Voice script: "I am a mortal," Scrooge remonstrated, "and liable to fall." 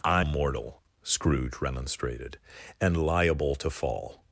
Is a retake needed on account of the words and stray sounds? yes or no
yes